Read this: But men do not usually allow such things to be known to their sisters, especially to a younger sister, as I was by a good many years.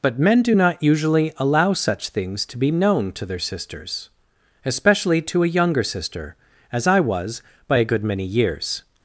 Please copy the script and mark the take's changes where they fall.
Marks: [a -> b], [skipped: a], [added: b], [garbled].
But men do not usually allow such things to be known to their sisters, especially to a younger sister, as I was by a good many years.